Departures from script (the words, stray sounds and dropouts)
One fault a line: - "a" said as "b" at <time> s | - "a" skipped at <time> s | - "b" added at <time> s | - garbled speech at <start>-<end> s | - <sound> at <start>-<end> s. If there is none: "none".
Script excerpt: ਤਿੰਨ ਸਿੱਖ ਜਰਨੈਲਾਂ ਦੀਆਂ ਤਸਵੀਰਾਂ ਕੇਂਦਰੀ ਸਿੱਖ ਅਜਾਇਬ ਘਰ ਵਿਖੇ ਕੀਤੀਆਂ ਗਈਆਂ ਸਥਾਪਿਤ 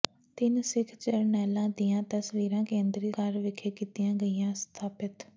- "ਸਿੱਖ ਅਜਾਇਬ" skipped at 3.1 s